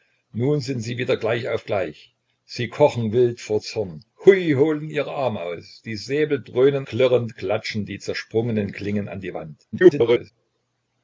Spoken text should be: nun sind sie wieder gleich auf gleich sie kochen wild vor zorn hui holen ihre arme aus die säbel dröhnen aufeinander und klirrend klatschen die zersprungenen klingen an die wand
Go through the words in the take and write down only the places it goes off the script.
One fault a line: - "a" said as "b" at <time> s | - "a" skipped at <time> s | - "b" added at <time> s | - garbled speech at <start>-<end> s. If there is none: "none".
- "aufeinander und" skipped at 6.9 s
- garbled speech at 9.7-10.3 s